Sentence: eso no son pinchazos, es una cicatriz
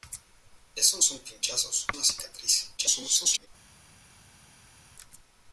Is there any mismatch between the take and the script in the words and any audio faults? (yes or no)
yes